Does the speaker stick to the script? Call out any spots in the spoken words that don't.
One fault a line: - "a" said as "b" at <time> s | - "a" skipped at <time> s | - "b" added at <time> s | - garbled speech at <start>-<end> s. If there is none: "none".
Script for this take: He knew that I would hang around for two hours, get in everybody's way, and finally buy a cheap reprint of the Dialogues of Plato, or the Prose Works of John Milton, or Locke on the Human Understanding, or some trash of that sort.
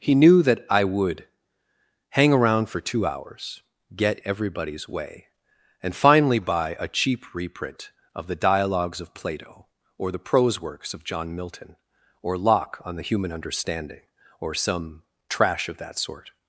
- "in" skipped at 4.2 s